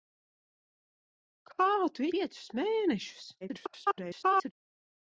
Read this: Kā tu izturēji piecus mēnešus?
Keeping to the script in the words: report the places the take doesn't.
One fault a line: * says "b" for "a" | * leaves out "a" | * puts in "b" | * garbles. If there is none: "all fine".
* leaves out "izturēji"
* garbles